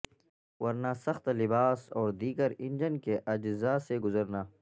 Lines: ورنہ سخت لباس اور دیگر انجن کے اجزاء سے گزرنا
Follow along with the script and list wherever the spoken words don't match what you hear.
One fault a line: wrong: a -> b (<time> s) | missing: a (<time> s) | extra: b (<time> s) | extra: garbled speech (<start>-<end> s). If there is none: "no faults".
no faults